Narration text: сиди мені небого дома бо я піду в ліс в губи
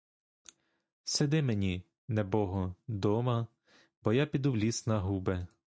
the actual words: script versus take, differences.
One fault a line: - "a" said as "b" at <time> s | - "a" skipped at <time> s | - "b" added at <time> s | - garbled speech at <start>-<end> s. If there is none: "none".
- "в" said as "на" at 4.9 s